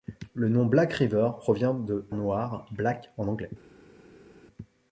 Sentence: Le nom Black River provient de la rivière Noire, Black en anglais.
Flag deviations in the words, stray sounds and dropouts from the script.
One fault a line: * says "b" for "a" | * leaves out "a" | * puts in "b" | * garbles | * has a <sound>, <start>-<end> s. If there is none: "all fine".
* leaves out "la rivière"